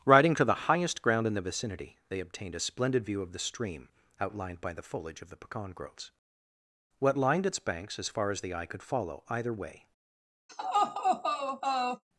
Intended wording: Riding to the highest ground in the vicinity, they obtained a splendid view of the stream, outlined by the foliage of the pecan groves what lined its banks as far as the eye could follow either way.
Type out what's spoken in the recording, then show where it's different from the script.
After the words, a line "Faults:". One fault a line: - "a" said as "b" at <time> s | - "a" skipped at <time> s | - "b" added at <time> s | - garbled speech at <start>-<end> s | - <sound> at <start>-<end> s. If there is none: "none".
Riding to the highest ground in the vicinity, they obtained a splendid view of the stream, outlined by the foliage of the pecan groves what lined its banks as far as the eye could follow either way.
Faults:
- laugh at 10.5-12.0 s